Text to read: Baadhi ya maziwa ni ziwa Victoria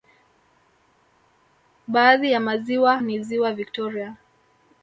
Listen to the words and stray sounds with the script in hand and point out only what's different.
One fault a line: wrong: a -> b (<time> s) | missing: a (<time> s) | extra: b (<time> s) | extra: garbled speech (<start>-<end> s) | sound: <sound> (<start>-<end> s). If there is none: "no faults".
no faults